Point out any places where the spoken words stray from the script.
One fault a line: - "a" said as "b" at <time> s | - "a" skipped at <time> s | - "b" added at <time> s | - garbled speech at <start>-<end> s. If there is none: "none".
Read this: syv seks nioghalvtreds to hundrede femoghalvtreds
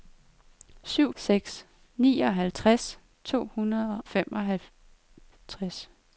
none